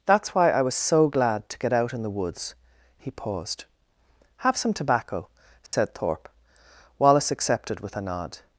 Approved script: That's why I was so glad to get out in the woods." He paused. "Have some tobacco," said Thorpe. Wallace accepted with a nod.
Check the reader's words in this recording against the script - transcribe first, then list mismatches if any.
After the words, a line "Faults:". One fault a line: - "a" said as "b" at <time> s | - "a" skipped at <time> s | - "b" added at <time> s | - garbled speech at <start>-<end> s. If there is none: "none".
That's why I was so glad to get out in the woods." He paused. "Have some tobacco," said Thorpe. Wallace accepted with a nod.
Faults:
none